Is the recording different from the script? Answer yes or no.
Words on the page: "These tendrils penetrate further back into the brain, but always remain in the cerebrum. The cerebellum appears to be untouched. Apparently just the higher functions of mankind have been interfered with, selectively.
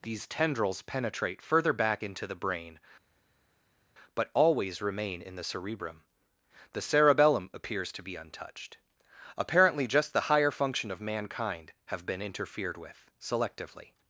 yes